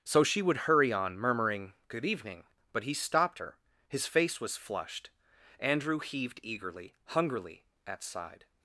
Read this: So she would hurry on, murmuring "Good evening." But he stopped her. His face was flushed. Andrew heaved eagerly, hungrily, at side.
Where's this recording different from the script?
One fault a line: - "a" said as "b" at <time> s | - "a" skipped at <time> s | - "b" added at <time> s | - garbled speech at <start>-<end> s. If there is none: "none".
none